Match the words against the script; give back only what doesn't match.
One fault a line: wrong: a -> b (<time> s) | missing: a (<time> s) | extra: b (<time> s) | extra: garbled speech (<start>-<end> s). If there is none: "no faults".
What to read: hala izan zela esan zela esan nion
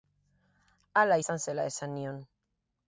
missing: zela esan (2.0 s)